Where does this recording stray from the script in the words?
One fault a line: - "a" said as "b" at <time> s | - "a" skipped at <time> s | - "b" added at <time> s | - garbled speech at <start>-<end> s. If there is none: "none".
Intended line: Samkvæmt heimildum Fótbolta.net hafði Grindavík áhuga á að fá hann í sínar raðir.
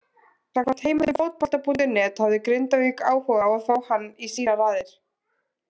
none